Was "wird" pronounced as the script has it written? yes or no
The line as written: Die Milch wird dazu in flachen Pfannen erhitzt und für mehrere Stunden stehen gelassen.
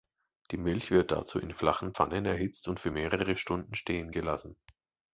yes